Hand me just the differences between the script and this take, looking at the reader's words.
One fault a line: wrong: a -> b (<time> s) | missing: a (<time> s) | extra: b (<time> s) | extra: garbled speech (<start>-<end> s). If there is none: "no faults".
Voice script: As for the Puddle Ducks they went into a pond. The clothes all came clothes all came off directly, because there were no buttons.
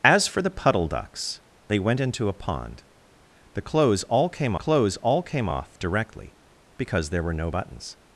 no faults